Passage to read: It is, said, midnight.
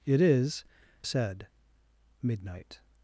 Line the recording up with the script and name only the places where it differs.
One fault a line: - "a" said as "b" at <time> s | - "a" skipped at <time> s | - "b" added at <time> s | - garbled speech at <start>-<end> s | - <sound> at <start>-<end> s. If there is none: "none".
none